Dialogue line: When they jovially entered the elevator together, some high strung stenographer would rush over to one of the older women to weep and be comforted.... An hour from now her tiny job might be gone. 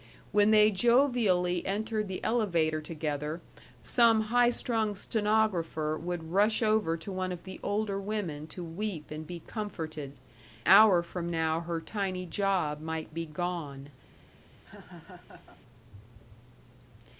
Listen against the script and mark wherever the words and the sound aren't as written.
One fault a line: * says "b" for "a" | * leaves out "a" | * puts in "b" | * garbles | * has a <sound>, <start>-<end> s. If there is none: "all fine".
* leaves out "An"
* has a laugh, 14.6-15.6 s